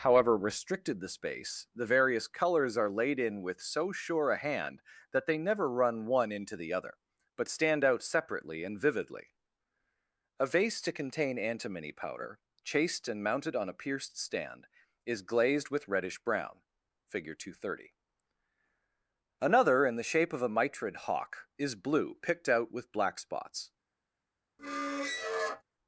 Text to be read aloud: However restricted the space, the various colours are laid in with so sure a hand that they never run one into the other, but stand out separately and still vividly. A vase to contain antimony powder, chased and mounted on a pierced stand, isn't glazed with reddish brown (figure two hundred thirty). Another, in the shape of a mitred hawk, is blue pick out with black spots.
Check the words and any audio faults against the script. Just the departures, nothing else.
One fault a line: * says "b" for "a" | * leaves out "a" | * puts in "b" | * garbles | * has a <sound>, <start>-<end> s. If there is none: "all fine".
* leaves out "still"
* says "is" for "isn't"
* says "picked" for "pick"
* has a squeak, 24.6-25.6 s